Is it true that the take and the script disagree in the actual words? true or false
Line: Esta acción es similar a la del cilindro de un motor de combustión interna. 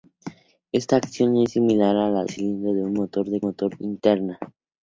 true